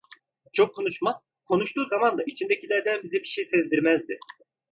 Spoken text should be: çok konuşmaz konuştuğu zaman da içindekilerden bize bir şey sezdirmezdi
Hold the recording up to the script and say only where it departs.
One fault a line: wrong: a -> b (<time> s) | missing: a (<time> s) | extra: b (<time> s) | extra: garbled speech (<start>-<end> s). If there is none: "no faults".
no faults